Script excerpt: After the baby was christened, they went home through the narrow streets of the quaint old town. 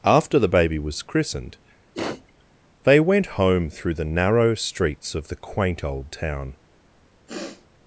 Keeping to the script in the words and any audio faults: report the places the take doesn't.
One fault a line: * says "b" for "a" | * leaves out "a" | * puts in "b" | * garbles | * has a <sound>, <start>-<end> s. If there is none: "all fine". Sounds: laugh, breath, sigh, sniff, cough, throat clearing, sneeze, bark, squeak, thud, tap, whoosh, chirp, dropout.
* has a sniff, 1.9-2.4 s
* has a sniff, 7.3-7.7 s